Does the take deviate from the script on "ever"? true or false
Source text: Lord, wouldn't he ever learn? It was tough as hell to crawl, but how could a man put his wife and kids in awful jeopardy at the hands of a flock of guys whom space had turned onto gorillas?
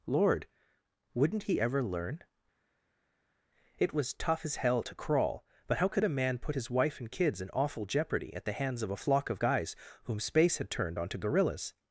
false